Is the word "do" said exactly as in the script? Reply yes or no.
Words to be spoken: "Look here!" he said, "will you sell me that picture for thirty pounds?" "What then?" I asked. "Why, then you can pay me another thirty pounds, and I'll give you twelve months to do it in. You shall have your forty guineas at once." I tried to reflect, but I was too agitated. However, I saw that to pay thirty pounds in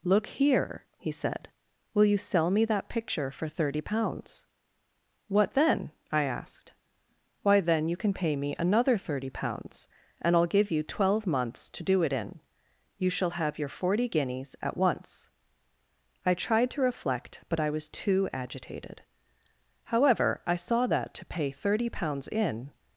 yes